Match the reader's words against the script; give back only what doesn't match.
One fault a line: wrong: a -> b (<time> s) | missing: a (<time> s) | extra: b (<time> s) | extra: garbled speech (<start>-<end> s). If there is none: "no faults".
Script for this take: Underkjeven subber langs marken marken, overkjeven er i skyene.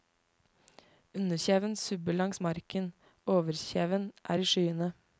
missing: marken (2.9 s)